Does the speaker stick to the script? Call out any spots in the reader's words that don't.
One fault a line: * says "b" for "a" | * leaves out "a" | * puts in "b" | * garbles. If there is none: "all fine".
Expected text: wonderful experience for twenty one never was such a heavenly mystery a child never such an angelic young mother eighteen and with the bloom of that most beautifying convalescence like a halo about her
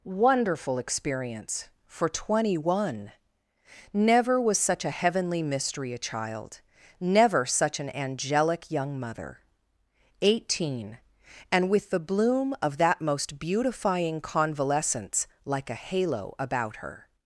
all fine